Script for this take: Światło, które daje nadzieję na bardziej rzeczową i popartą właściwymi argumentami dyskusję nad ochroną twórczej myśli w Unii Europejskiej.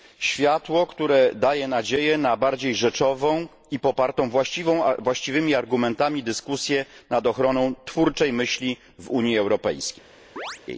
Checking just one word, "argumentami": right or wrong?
right